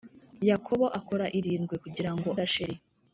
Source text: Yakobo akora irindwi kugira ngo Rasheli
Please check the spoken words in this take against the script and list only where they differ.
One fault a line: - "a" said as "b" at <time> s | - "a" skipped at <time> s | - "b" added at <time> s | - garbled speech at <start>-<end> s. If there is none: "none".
none